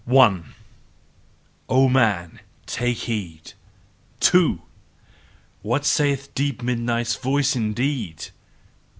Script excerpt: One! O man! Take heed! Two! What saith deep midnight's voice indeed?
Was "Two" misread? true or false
false